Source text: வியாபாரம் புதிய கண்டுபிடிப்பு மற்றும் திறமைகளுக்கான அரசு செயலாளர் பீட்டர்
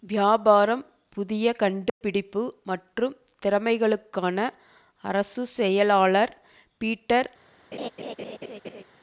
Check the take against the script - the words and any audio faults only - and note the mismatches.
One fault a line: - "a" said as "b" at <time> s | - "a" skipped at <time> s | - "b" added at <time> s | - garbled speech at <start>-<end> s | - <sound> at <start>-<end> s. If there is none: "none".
- dropout at 1.9-2.0 s
- laugh at 7.7-8.8 s